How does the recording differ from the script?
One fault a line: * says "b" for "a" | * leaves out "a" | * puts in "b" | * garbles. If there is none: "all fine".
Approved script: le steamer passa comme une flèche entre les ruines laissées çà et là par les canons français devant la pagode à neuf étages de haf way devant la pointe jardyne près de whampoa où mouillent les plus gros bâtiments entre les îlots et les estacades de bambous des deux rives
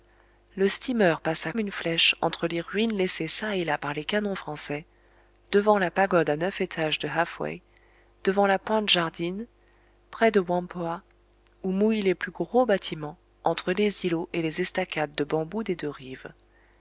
* leaves out "comme"